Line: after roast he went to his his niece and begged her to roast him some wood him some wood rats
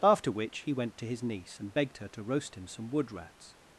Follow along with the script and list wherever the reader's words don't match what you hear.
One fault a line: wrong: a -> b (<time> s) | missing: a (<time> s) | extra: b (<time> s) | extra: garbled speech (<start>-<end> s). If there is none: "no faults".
wrong: roast -> which (0.3 s)
missing: his (1.2 s)
missing: him some wood (3.1 s)